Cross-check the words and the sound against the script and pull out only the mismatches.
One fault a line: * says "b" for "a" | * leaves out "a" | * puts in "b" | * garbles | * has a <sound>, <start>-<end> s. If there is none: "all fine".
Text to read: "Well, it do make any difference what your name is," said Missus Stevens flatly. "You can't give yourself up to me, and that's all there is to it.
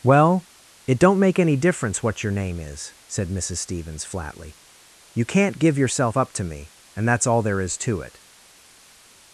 * says "don't" for "do"